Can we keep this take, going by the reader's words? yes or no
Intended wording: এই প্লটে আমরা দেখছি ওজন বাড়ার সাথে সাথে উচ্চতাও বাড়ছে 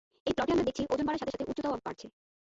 yes